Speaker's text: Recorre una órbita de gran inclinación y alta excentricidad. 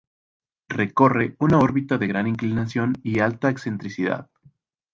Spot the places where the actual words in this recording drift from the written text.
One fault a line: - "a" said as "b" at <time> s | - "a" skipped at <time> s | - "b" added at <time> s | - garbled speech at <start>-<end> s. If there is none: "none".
none